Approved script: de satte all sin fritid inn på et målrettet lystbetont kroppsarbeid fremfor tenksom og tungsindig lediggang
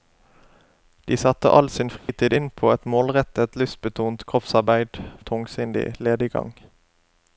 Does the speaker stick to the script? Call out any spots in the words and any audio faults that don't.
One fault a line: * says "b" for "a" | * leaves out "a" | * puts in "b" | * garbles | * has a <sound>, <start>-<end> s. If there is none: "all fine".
* has a dropout, 2.0-2.1 s
* leaves out "fremfor tenksom"